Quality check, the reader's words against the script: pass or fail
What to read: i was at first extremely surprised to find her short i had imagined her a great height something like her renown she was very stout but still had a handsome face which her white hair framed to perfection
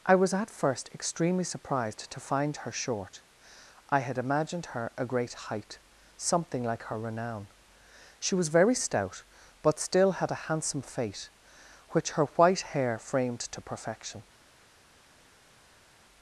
fail